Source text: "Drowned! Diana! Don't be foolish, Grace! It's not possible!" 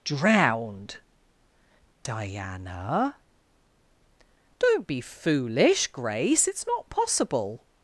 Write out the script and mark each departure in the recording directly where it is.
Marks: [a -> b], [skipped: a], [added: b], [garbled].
"Drowned! Diana! Don't be foolish, Grace! It's not possible!"